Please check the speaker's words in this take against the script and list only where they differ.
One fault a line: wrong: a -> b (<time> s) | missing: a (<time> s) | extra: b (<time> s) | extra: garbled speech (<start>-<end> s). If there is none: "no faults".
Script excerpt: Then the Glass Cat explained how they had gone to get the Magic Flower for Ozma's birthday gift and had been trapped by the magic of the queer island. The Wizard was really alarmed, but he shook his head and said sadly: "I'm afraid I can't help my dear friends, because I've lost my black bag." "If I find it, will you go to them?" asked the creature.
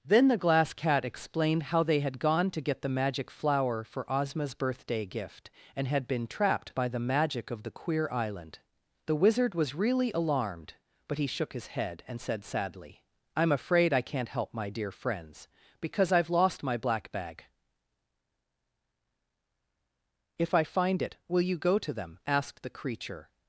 no faults